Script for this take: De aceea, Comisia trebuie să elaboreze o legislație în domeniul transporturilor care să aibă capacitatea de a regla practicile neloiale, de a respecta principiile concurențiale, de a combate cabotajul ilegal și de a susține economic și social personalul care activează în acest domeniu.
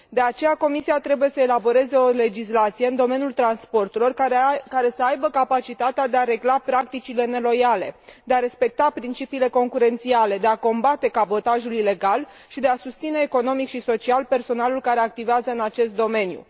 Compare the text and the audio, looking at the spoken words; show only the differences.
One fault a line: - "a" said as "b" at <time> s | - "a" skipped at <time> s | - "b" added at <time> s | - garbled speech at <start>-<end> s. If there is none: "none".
none